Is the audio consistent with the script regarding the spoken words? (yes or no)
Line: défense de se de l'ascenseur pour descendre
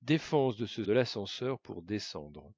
yes